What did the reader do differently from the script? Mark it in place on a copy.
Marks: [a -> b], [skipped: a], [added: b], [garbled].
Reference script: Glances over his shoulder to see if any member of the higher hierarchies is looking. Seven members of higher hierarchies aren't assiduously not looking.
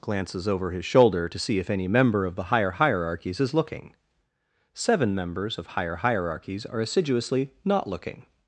Glances over his shoulder to see if any member of the higher hierarchies is looking. Seven members of higher hierarchies [aren't -> are] assiduously not looking.